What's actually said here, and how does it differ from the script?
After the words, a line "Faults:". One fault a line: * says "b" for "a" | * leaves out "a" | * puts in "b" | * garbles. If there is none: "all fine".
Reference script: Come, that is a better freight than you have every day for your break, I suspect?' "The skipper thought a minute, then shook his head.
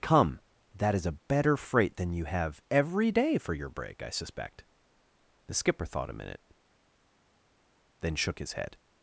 Come, that is a better freight than you have every day for your break, I suspect?' "The skipper thought a minute, then shook his head.
Faults:
all fine